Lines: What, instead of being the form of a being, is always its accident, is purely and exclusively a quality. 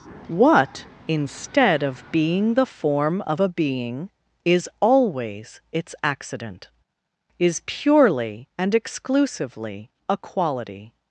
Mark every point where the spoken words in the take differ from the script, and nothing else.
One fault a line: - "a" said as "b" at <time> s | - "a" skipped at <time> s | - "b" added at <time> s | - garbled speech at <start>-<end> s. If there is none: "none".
none